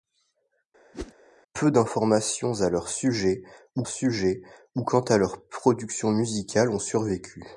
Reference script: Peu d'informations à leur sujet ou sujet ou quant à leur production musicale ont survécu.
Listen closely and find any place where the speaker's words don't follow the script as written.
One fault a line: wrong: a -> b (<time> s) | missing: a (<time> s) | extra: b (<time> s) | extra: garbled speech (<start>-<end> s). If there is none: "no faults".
no faults